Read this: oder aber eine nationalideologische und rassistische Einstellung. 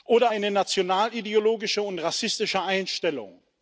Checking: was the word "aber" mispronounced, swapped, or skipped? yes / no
yes